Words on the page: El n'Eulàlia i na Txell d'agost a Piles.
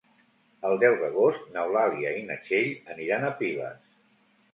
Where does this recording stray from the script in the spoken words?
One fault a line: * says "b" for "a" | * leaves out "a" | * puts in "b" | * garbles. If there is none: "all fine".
* puts in "deu d'agost"
* says "aniran" for "d'agost"